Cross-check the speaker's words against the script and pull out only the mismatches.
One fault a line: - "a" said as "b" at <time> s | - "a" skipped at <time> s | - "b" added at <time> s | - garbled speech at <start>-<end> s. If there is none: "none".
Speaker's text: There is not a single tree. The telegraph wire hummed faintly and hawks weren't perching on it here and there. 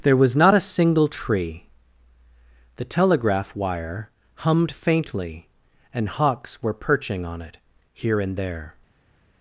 - "is" said as "was" at 0.2 s
- "weren't" said as "were" at 6.6 s